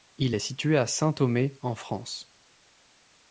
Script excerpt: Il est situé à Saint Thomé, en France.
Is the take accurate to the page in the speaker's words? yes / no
yes